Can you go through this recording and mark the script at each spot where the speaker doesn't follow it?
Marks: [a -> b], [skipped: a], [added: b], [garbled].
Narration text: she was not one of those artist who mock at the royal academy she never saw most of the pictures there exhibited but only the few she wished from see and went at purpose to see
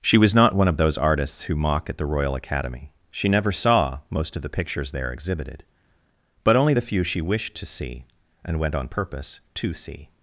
she was not one of those [artist -> artists] who mock at the royal academy she never saw most of the pictures there exhibited but only the few she wished [from -> to] see and went [at -> on] purpose to see